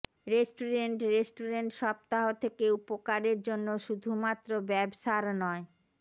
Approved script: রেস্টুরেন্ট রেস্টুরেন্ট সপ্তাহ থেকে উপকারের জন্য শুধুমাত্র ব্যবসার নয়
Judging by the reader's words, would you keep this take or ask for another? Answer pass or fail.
pass